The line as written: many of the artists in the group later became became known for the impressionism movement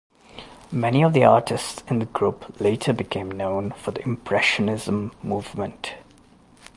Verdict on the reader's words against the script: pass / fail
fail